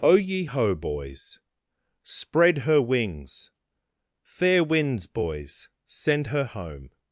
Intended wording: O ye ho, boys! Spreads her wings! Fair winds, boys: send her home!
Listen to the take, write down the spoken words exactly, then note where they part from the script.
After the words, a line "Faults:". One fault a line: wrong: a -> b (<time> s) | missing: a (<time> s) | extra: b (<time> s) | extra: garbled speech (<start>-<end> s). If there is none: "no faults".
O ye ho, boys! Spread her wings! Fair winds, boys: send her home!
Faults:
wrong: Spreads -> Spread (2.0 s)